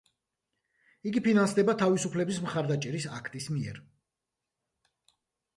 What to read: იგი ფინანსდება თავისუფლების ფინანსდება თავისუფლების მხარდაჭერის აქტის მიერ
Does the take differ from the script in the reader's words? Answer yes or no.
yes